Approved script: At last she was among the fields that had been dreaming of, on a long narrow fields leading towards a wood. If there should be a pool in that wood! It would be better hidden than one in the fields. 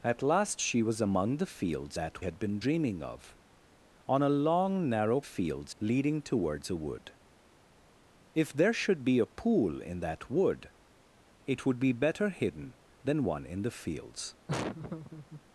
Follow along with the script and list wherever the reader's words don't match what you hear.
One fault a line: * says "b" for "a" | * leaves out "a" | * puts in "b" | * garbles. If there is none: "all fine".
all fine